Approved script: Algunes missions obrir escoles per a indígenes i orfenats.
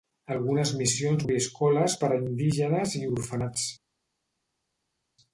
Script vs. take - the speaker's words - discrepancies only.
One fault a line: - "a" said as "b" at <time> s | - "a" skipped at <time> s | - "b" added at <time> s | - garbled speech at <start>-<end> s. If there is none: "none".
none